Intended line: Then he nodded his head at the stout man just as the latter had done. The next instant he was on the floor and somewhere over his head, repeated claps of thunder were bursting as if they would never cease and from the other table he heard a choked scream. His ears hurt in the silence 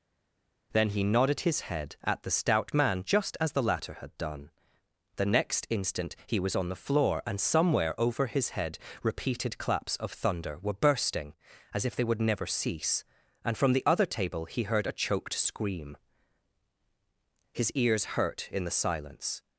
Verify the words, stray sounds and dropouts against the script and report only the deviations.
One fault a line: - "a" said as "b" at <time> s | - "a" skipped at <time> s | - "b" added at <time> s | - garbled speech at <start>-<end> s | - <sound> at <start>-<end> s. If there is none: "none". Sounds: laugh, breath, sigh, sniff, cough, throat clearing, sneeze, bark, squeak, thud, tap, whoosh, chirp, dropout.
none